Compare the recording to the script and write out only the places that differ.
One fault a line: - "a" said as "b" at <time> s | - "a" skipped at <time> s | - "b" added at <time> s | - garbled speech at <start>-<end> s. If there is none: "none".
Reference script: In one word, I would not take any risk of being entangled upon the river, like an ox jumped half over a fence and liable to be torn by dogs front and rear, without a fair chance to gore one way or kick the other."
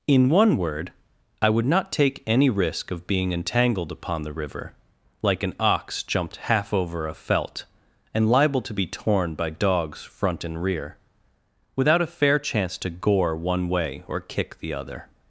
- "fence" said as "felt" at 7.1 s